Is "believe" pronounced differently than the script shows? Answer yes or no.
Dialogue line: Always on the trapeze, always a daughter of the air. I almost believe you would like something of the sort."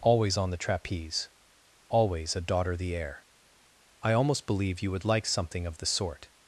no